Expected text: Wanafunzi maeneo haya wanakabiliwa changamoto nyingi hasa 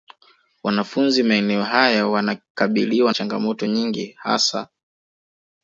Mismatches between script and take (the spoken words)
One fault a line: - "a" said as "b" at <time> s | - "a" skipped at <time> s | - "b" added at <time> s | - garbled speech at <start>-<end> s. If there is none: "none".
none